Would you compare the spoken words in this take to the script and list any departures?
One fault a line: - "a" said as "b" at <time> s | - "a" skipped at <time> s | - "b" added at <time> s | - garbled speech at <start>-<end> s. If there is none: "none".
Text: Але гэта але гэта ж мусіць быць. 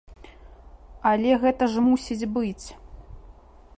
- "але гэта" skipped at 1.6 s